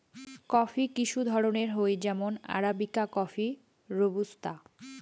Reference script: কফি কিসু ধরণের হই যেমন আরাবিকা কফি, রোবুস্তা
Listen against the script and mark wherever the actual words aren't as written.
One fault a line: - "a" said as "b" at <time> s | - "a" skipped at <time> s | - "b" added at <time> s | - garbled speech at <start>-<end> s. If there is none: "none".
none